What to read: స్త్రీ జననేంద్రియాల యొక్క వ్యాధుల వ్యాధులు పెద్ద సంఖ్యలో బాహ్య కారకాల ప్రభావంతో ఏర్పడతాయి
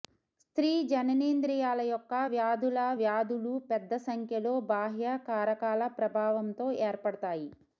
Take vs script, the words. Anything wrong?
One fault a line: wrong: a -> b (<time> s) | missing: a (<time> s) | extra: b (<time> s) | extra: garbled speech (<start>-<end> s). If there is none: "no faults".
no faults